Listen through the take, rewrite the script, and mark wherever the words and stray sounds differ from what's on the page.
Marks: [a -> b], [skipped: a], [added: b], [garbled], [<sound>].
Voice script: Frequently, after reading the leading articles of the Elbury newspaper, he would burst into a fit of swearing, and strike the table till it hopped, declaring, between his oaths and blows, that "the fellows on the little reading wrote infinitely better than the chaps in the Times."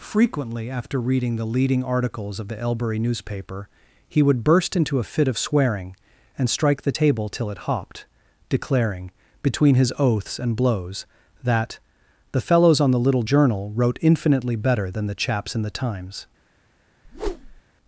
Frequently, after reading the leading articles of the Elbury newspaper, he would burst into a fit of swearing, and strike the table till it hopped, declaring, between his oaths and blows, that "the fellows on the little [reading -> journal] wrote infinitely better than the chaps in the Times." [whoosh]